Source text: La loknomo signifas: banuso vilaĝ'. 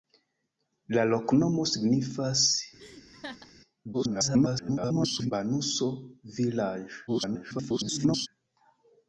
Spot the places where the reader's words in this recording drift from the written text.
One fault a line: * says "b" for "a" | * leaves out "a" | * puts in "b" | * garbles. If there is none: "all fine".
* garbles
* garbles